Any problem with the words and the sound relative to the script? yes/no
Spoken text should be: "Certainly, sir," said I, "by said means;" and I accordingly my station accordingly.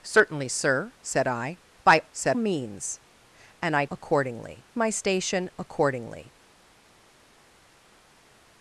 no